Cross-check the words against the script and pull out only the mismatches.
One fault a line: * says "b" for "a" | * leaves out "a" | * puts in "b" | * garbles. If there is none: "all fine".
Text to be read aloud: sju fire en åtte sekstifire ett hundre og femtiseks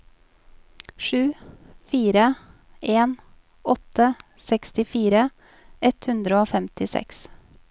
all fine